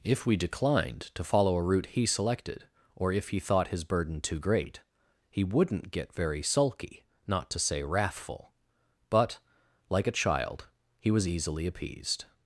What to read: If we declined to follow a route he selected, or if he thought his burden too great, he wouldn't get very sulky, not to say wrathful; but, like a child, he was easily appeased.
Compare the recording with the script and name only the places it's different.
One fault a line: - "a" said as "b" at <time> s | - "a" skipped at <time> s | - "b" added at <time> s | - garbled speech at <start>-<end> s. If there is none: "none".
none